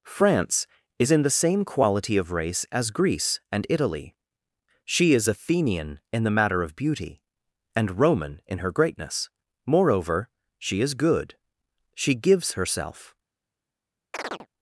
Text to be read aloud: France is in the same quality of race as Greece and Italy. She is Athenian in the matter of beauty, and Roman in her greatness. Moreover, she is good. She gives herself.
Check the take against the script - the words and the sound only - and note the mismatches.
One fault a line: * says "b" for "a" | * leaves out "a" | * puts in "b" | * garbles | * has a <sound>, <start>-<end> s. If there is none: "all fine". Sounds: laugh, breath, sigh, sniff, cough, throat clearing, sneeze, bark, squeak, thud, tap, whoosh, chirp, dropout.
* has a chirp, 14.1-14.5 s